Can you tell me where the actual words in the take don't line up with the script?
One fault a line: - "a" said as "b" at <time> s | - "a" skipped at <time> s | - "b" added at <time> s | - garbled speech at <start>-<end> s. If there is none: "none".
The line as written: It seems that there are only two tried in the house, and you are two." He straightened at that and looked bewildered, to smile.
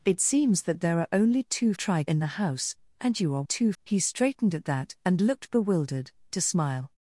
none